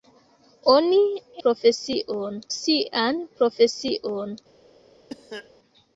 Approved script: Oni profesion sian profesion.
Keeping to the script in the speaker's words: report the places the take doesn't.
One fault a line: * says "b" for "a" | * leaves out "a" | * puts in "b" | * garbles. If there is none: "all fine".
all fine